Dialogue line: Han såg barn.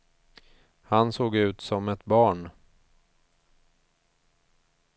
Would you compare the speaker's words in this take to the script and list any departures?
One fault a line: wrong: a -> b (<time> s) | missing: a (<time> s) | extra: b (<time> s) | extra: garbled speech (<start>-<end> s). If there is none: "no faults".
extra: ut som ett (1.4 s)